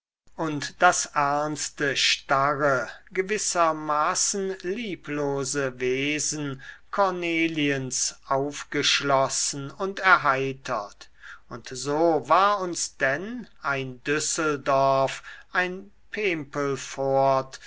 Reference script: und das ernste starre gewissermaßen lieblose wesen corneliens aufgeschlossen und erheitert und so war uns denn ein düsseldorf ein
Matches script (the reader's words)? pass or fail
pass